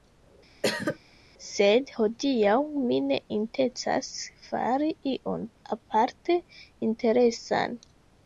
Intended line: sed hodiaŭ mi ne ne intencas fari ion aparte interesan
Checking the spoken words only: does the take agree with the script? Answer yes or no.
no